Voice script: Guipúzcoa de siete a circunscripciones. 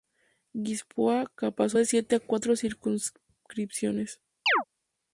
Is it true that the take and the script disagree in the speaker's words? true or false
true